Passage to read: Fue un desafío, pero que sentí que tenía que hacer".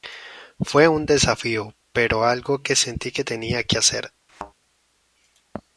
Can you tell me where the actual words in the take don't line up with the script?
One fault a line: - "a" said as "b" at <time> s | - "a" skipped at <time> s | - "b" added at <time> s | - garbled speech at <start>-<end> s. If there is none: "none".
- "algo" added at 2.2 s